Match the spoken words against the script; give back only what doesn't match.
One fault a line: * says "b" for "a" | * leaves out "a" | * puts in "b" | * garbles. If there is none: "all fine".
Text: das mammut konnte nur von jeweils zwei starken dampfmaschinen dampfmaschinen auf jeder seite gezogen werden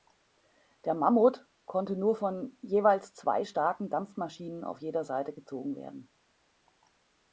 * says "der" for "das"
* leaves out "dampfmaschinen"